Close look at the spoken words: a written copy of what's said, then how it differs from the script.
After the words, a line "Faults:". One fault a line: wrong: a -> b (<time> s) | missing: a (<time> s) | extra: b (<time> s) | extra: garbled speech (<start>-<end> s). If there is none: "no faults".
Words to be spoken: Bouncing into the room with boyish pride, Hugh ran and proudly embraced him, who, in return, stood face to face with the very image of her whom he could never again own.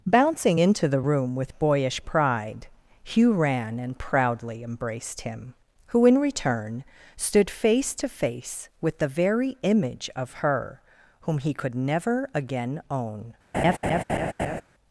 Bouncing into the room with boyish pride, Hugh ran and proudly embraced him, who, in return, stood face to face with the very image of her whom he could never again own.
Faults:
no faults